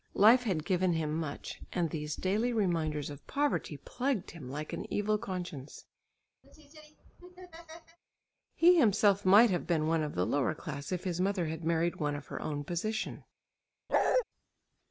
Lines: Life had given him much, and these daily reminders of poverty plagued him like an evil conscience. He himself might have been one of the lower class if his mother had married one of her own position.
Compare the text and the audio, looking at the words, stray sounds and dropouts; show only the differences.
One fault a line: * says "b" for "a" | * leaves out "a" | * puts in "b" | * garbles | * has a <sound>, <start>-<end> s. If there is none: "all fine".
* has a laugh, 6.4-8.0 s
* has a bark, 13.9-14.2 s